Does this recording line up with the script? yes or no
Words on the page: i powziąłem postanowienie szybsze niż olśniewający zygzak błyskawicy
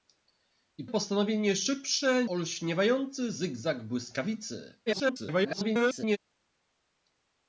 no